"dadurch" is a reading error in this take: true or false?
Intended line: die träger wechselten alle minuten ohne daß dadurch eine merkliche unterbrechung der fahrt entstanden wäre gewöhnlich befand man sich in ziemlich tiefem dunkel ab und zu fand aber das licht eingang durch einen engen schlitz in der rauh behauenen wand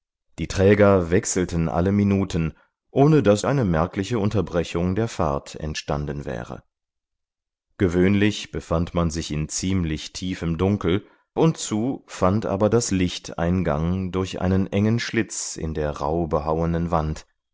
true